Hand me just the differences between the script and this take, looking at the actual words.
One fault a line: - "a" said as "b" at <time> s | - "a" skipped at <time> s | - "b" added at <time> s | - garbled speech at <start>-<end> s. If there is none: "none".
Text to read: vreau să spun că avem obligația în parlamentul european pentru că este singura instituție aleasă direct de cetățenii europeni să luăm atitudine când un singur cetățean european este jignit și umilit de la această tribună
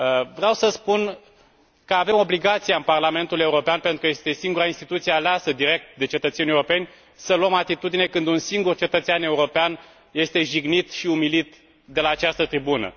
none